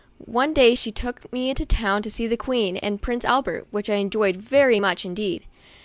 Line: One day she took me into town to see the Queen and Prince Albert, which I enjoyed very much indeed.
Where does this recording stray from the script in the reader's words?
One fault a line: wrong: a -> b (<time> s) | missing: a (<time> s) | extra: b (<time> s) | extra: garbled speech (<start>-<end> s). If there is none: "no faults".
no faults